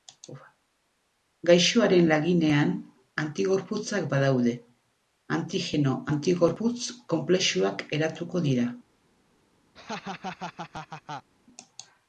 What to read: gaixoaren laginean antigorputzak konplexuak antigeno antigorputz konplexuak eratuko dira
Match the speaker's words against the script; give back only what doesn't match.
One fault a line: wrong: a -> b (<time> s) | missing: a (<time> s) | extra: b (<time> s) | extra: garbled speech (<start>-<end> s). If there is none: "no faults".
wrong: konplexuak -> badaude (4.2 s)